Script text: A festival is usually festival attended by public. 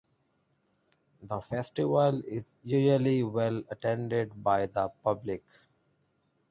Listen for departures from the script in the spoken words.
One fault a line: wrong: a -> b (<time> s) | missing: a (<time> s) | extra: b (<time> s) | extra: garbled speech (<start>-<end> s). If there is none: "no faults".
wrong: A -> The (1.2 s)
wrong: festival -> well (3.2 s)
extra: the (4.7 s)